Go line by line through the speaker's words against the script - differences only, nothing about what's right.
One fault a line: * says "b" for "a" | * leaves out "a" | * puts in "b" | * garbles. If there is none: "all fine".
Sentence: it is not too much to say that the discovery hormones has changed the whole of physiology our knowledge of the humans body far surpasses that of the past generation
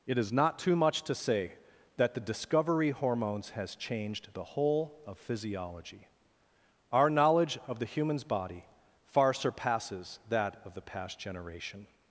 all fine